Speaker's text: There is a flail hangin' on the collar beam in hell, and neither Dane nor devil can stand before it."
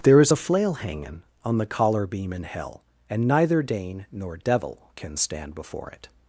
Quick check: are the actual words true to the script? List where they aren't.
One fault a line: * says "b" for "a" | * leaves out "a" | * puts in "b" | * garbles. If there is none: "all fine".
all fine